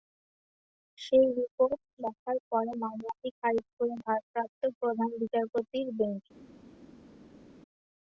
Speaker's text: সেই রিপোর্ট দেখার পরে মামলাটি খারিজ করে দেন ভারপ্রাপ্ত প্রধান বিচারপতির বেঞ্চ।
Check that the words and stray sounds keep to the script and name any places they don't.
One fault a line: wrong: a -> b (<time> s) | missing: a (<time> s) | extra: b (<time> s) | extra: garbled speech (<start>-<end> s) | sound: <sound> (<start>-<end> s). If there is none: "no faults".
missing: দেন (4.0 s)